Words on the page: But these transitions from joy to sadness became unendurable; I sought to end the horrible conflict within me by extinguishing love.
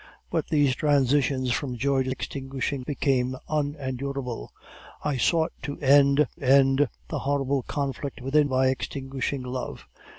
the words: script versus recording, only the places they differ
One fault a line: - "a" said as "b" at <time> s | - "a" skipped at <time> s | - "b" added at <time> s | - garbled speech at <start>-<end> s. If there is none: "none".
- "sadness" said as "extinguishing" at 2.1 s
- "end" added at 6.4 s
- "me" skipped at 8.5 s